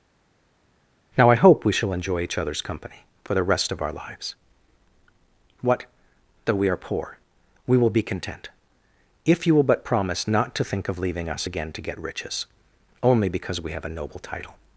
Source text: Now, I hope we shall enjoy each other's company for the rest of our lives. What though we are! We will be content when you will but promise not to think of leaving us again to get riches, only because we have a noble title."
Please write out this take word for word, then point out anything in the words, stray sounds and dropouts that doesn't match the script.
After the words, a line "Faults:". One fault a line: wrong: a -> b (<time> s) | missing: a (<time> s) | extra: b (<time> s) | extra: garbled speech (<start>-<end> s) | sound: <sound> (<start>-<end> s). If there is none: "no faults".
Now, I hope we shall enjoy each other's company for the rest of our lives. What though we are poor! We will be content if you will but promise not to think of leaving us again to get riches, only because we have a noble title."
Faults:
extra: poor (6.8 s)
wrong: when -> if (9.2 s)